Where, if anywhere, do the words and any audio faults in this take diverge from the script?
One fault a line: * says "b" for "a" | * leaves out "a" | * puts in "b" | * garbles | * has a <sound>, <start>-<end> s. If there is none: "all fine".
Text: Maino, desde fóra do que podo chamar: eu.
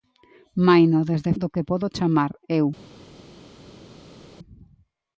* leaves out "fóra"